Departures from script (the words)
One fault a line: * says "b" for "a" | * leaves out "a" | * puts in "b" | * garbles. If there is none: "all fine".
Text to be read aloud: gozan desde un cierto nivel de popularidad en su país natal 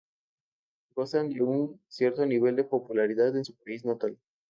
* says "de" for "desde"